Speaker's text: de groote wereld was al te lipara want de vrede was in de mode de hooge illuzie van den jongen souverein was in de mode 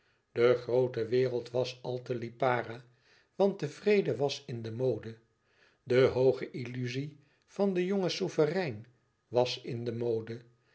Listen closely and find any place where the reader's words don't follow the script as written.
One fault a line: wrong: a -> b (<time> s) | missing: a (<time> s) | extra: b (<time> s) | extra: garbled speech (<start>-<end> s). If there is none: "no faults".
no faults